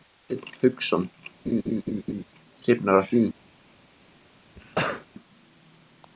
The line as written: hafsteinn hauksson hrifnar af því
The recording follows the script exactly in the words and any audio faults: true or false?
false